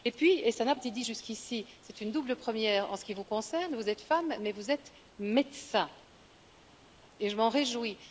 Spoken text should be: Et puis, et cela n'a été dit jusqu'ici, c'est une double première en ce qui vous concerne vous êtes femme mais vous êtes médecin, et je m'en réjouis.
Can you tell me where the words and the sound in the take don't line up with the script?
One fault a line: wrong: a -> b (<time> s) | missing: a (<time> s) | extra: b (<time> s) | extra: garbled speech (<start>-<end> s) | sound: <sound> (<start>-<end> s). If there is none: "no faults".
no faults